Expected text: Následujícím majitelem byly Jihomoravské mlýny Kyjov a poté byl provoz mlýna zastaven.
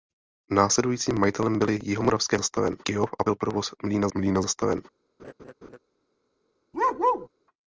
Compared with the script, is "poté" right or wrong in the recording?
wrong